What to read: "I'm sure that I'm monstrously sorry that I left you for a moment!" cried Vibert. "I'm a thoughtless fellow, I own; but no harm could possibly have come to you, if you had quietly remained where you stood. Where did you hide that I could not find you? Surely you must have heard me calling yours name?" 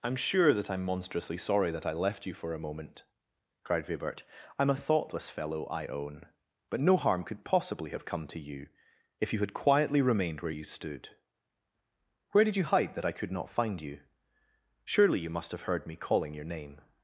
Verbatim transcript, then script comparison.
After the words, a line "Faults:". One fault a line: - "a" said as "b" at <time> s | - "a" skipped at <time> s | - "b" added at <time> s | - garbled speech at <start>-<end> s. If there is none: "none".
"I'm sure that I'm monstrously sorry that I left you for a moment!" cried Vibert. "I'm a thoughtless fellow, I own; but no harm could possibly have come to you, if you had quietly remained where you stood. Where did you hide that I could not find you? Surely you must have heard me calling your name?"
Faults:
- "yours" said as "your" at 16.3 s